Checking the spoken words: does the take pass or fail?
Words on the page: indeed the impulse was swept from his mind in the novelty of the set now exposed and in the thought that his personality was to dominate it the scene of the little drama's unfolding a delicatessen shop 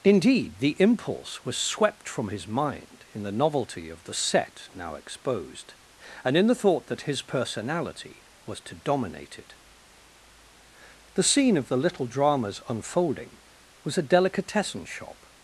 fail